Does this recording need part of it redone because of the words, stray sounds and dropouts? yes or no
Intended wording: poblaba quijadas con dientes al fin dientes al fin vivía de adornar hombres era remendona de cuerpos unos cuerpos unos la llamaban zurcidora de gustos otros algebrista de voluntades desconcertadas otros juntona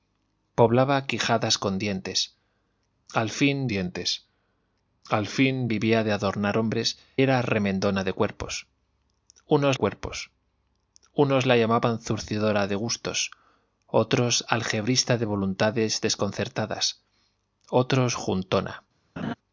yes